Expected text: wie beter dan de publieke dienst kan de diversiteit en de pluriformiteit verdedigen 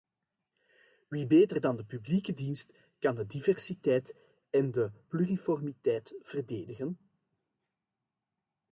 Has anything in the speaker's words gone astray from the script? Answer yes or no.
no